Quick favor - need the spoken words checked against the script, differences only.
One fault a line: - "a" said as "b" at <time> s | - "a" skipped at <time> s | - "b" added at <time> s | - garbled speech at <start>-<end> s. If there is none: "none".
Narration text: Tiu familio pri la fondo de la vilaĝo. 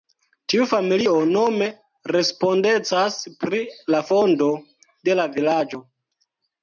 - "nome respondecas" added at 1.3 s